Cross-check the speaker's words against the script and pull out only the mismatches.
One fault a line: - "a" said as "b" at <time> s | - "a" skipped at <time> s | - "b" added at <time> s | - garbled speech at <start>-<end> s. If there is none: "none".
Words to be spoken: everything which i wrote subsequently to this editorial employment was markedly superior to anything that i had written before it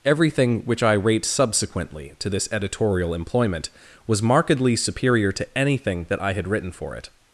- "wrote" said as "rate" at 0.9 s
- "before" said as "for" at 6.7 s